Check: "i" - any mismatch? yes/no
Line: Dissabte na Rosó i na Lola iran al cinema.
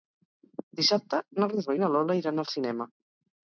no